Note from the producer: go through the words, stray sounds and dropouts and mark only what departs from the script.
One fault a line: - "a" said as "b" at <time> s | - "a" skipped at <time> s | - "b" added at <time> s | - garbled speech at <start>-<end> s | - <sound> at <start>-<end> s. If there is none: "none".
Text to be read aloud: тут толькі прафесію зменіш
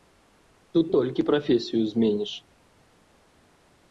none